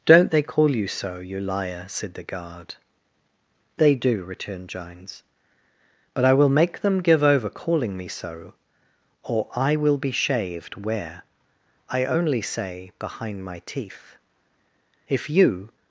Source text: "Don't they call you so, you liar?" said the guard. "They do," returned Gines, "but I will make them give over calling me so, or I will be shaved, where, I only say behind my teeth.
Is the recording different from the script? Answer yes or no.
yes